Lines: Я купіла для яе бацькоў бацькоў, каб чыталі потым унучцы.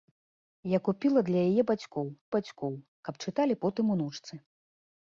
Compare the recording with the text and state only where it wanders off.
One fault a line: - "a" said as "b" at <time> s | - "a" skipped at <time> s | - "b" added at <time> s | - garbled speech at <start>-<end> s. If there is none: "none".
none